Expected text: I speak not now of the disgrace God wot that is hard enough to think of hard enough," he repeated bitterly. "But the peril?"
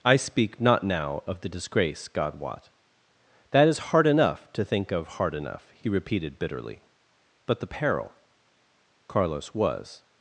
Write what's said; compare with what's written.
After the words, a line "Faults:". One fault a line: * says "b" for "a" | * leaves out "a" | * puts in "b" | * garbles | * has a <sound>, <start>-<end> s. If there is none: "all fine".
I speak not now of the disgrace God wot that is hard enough to think of hard enough," he repeated bitterly. "But the peril?" Carlos was
Faults:
* puts in "Carlos was"